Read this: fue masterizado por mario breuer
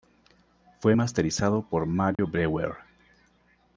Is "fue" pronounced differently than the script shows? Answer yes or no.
no